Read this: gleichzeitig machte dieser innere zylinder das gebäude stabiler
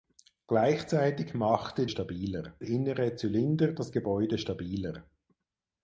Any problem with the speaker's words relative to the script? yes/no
yes